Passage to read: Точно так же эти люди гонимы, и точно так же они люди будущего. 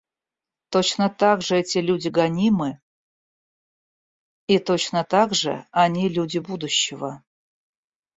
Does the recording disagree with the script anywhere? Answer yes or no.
no